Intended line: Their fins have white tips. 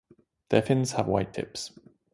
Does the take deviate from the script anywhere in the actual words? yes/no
no